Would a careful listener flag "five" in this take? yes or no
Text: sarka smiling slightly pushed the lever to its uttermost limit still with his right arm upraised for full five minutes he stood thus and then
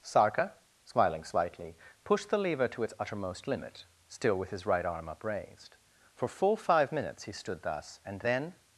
no